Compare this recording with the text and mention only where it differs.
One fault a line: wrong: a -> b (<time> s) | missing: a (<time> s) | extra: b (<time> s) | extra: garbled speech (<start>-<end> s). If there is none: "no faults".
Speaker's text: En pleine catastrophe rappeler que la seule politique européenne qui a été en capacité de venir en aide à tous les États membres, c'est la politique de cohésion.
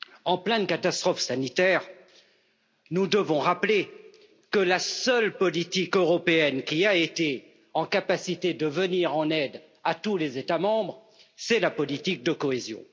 extra: sanitaire nous devons (1.2 s)